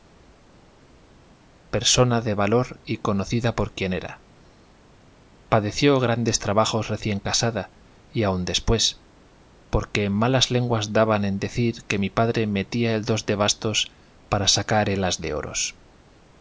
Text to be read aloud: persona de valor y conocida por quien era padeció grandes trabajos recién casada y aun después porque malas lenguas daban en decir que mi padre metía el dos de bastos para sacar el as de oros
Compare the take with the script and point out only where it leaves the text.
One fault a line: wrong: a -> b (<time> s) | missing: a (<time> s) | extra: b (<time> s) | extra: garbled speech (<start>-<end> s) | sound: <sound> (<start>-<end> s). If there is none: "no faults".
no faults